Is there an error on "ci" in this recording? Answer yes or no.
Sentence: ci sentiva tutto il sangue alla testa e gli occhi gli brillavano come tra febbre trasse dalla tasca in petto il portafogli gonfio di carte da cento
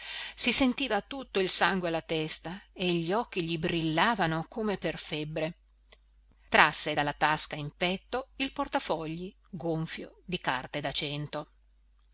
yes